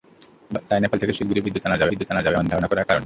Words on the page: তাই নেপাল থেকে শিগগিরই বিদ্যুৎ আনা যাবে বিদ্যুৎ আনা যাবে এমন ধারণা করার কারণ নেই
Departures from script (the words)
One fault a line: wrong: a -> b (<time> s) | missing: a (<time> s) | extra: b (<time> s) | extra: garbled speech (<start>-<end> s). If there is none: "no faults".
no faults